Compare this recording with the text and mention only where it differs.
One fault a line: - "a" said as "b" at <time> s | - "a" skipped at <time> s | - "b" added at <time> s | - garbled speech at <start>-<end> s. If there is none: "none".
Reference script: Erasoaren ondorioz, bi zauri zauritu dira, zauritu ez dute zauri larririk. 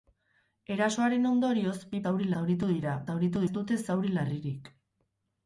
none